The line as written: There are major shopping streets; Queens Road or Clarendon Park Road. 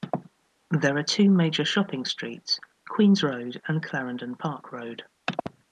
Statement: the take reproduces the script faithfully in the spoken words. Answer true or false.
false